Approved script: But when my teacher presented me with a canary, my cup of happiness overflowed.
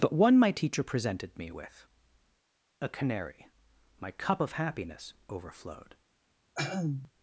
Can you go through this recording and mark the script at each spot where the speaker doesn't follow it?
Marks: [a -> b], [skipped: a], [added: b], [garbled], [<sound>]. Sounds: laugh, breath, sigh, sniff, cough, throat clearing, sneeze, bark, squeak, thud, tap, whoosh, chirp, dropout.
But [when -> one] my teacher presented me with a canary, my cup of happiness overflowed. [throat clearing]